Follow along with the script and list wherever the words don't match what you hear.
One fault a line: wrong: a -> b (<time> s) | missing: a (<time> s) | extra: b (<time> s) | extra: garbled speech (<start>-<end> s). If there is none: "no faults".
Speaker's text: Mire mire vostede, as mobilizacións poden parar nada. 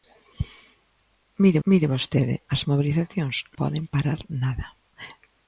no faults